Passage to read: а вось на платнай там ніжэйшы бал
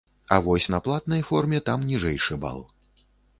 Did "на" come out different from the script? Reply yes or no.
no